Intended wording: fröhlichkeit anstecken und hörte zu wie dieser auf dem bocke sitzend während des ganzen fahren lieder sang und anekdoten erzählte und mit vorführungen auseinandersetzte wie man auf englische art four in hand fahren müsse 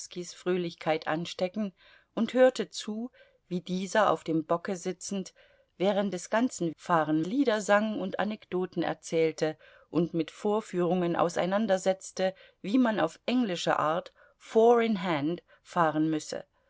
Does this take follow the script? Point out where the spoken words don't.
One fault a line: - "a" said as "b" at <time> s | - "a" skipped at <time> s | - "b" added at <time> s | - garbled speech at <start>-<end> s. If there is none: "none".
none